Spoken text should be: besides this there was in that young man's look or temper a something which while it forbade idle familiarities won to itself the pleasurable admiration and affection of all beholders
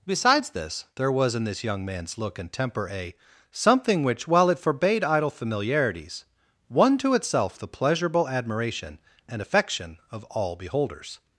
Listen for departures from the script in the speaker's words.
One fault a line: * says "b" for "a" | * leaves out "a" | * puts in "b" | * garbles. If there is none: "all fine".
* says "this" for "that"
* says "and" for "or"